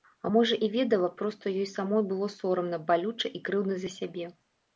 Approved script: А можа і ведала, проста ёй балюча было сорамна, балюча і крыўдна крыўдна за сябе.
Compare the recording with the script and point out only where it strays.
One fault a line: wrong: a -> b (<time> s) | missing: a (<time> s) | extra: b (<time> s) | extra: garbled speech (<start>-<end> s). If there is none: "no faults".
wrong: балюча -> самой (1.7 s)
missing: крыўдна (3.7 s)